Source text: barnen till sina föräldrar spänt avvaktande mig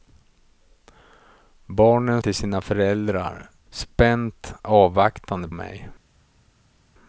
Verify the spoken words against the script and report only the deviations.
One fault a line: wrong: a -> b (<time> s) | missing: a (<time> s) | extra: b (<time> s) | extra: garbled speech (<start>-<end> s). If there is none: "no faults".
no faults